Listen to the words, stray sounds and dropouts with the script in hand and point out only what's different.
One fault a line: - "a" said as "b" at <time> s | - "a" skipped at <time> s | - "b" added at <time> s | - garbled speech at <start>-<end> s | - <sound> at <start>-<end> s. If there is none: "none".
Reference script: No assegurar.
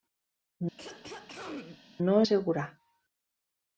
- throat clearing at 0.8-1.8 s